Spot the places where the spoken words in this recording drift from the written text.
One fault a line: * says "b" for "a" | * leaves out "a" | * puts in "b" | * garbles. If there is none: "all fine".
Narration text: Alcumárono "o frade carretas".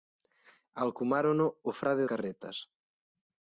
all fine